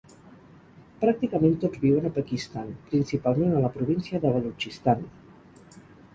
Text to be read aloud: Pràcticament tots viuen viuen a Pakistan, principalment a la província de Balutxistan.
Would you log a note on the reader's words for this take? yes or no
yes